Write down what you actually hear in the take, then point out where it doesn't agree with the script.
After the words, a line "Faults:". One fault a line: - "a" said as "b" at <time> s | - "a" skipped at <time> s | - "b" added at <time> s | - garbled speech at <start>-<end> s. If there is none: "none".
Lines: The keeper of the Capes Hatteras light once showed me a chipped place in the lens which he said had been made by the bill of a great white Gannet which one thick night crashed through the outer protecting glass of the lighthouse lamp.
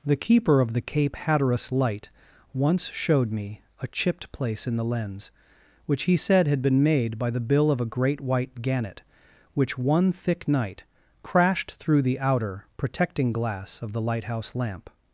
The keeper of the Cape Hatteras light once showed me a chipped place in the lens which he said had been made by the bill of a great white Gannet which one thick night crashed through the outer protecting glass of the lighthouse lamp.
Faults:
- "Capes" said as "Cape" at 0.8 s